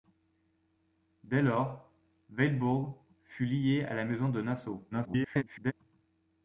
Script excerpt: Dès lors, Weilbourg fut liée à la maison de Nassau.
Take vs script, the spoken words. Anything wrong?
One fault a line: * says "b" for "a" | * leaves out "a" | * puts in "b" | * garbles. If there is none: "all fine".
* garbles